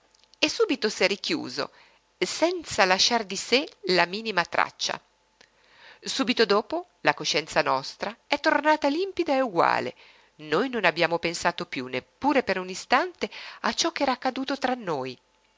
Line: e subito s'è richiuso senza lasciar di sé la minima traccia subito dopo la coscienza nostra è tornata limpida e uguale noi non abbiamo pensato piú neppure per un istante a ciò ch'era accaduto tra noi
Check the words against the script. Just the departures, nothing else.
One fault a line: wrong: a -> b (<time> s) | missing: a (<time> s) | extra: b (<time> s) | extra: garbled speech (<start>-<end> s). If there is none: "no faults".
no faults